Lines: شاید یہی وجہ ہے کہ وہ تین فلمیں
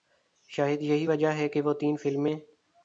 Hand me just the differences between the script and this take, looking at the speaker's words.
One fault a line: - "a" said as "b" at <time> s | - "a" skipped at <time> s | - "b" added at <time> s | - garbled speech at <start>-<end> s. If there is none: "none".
none